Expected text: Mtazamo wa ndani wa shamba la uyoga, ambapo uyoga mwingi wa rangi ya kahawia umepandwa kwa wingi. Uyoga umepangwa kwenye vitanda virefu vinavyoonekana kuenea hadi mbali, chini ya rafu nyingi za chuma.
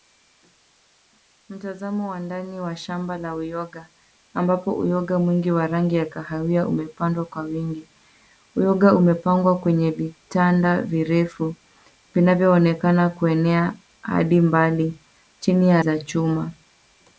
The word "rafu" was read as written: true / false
false